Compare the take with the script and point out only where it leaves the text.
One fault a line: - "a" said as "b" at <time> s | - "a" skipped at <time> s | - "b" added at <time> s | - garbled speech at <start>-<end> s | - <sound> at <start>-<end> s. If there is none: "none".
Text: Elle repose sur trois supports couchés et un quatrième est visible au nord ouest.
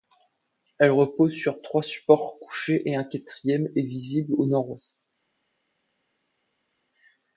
none